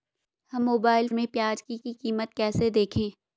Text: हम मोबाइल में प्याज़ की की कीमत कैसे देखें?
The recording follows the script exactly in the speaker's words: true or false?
true